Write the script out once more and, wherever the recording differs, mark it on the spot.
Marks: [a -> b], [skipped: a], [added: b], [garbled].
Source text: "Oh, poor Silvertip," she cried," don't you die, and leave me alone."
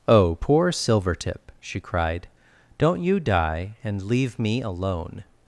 "Oh, poor Silvertip," she cried," don't you die, and leave me alone."